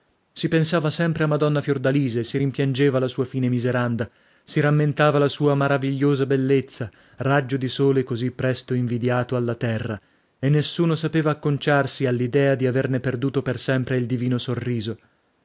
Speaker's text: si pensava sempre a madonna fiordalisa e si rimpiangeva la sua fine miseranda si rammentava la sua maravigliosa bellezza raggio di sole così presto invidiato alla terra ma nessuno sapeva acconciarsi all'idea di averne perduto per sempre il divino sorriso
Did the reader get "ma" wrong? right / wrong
wrong